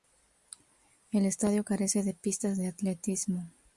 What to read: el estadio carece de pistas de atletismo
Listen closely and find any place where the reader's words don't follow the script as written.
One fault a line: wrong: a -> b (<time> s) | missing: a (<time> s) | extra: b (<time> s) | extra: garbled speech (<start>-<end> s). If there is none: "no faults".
no faults